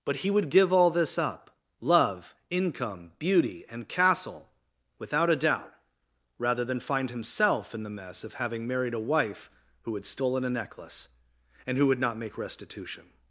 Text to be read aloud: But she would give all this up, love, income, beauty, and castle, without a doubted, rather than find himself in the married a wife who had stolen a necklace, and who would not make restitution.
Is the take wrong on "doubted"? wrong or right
wrong